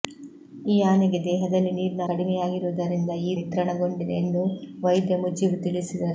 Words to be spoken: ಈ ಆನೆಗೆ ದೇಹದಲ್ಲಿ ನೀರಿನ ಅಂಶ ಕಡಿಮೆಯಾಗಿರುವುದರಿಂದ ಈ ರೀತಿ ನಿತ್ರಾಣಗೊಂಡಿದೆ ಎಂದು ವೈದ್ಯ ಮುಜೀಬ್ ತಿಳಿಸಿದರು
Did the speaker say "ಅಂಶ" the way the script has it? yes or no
no